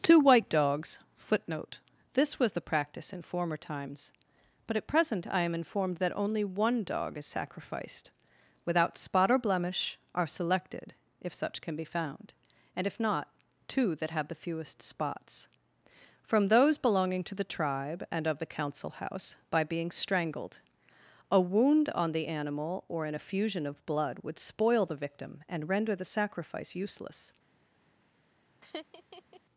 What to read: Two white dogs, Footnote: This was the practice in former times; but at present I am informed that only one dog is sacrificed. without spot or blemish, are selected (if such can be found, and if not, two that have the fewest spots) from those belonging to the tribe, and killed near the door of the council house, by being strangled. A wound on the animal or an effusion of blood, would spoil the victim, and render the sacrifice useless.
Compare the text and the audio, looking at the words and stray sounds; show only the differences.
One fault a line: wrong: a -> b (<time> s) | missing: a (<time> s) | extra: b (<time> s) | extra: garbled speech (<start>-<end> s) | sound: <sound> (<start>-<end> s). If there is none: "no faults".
missing: killed near the door (18.2 s)
sound: laugh (28.6-29.4 s)